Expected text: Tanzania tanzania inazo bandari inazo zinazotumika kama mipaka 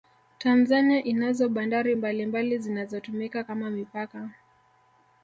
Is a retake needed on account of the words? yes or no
yes